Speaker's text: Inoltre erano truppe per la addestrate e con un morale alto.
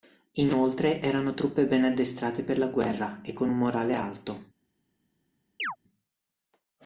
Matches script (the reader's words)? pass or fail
fail